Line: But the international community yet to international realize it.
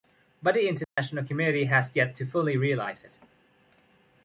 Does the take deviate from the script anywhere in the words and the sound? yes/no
yes